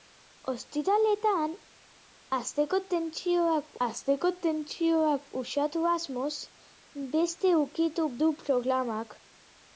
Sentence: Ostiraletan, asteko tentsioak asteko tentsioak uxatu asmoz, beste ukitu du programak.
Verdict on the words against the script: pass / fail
pass